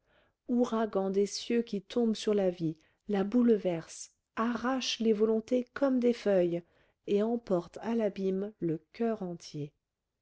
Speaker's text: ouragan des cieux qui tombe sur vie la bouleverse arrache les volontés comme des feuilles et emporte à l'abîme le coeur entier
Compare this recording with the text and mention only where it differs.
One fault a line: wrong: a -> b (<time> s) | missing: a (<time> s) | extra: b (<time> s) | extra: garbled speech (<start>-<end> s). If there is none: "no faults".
extra: la (2.3 s)